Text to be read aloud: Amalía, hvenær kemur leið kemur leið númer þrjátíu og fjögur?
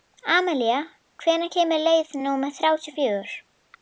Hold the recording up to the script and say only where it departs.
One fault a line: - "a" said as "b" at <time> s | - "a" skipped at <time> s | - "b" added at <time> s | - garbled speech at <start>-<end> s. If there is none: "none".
- "kemur leið" skipped at 2.1 s